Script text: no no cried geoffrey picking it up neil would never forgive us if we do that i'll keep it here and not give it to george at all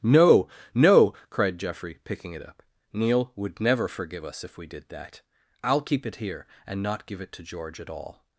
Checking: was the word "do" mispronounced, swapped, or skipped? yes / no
yes